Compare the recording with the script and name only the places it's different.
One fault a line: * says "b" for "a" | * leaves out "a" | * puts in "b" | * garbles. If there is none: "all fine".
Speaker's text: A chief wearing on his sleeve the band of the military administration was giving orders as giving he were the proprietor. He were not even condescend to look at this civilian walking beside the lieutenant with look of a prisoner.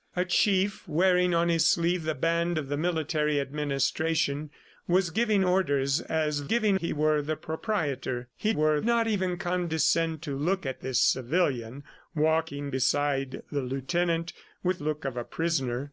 all fine